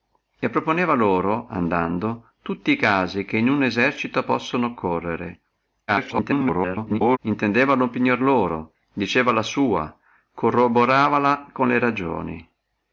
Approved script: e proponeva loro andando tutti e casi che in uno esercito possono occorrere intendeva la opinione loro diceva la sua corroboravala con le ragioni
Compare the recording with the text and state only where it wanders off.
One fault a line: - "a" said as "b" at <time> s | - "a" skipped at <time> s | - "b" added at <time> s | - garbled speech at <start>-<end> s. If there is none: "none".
- garbled speech at 5.9-7.2 s